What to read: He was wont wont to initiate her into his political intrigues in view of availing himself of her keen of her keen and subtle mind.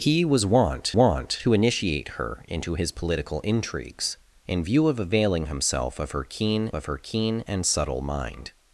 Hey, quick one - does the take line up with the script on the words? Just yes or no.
yes